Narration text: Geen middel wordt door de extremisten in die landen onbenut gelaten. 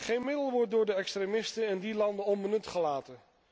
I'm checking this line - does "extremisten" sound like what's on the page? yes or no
yes